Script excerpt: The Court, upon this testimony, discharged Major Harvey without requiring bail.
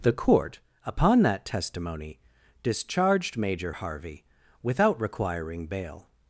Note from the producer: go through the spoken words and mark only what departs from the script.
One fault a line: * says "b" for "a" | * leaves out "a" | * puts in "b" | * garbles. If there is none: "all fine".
* says "that" for "this"